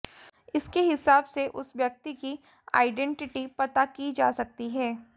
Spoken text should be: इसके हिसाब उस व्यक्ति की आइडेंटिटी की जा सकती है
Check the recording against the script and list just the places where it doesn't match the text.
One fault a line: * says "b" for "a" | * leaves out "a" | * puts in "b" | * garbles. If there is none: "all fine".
* puts in "से"
* puts in "पता"